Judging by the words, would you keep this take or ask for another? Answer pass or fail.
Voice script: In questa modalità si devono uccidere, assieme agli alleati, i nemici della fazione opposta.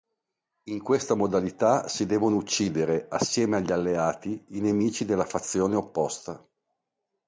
pass